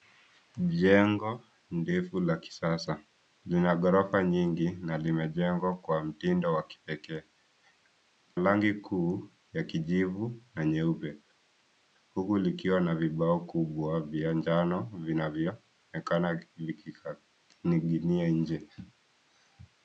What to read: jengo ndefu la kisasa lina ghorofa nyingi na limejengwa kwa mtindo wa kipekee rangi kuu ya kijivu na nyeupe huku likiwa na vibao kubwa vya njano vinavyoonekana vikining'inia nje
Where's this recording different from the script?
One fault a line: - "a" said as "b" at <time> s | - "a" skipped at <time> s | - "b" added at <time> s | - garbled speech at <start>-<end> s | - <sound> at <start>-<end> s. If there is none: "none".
none